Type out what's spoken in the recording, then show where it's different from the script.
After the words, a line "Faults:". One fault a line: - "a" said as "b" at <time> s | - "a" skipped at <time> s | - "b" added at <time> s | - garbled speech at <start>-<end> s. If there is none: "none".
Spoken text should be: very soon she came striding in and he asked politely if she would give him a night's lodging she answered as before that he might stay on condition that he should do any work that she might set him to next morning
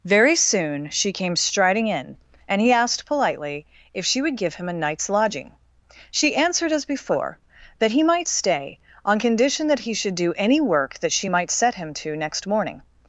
very soon she came striding in and he asked politely if she would give him a night's lodging she answered as before that he might stay on condition that he should do any work that she might set him to next morning
Faults:
none